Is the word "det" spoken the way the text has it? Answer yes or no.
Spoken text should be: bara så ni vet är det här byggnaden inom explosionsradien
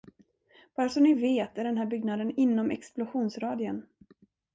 no